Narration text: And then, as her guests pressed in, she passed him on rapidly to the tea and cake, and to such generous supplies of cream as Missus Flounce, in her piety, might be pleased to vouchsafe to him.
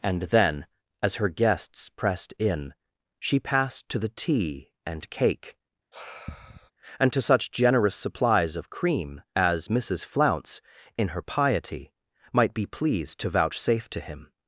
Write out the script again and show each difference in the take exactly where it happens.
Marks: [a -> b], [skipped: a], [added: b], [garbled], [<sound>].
And then, as her guests pressed in, she passed [skipped: him on rapidly] to the tea and cake, [sigh] and to such generous supplies of cream as Missus Flounce, in her piety, might be pleased to vouchsafe to him.